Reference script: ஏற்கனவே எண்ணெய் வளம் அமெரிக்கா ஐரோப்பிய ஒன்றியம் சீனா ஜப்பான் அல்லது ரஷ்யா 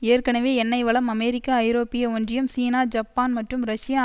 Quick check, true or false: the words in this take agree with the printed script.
false